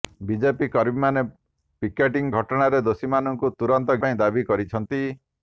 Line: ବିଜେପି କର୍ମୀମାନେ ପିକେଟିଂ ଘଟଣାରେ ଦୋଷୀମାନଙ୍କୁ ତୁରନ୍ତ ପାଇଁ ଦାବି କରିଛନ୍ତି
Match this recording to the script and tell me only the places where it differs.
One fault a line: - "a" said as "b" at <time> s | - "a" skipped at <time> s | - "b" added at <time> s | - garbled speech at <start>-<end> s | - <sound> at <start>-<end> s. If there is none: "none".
none